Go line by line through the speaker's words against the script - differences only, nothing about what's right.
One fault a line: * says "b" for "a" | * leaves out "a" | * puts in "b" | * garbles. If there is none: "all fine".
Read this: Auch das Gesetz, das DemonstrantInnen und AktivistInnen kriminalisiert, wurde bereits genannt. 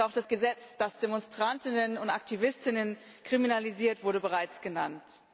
all fine